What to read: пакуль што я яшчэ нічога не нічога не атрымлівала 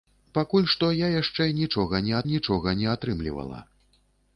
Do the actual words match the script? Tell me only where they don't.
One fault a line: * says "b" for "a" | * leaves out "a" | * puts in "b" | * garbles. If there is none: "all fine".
all fine